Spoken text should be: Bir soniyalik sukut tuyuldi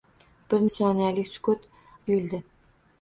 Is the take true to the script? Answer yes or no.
yes